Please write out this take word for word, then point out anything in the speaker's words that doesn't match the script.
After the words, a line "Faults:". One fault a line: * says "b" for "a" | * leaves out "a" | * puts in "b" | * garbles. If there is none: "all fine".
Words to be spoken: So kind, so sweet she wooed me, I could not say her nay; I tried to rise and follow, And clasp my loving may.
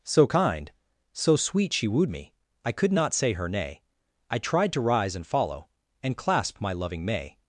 So kind, so sweet she wooed me, I could not say her nay; I tried to rise and follow, And clasp my loving may.
Faults:
all fine